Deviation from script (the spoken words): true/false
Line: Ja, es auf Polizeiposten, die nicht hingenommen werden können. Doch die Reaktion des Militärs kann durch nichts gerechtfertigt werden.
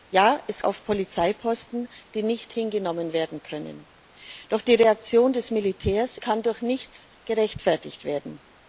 false